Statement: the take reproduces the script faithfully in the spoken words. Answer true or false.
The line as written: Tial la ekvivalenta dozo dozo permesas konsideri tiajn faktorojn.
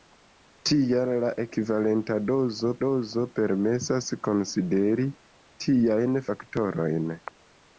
true